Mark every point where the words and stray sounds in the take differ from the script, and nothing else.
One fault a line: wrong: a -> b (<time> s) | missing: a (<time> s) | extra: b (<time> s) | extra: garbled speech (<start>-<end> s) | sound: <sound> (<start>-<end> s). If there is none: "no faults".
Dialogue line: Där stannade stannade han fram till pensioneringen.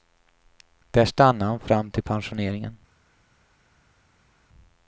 missing: stannade (1.5 s)